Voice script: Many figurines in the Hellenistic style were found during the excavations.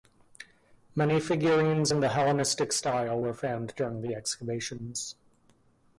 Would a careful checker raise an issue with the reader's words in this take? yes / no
no